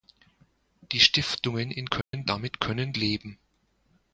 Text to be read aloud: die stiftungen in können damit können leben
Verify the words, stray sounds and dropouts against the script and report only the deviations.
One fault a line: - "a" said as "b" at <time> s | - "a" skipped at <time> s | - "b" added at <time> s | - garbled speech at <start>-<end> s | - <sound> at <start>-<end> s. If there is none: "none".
- dropout at 2.0-2.1 s